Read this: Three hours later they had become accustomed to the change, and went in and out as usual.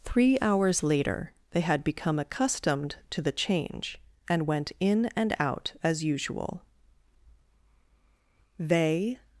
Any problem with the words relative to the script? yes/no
yes